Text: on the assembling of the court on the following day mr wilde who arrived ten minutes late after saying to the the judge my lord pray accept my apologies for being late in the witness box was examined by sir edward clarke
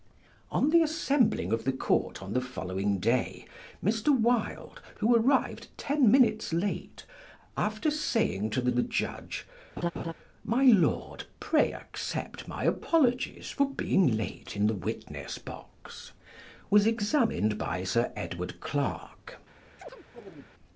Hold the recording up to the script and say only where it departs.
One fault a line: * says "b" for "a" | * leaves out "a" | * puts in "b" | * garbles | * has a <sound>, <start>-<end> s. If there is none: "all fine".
* has a laugh, 9.8-10.1 s
* has a chirp, 19.8-20.5 s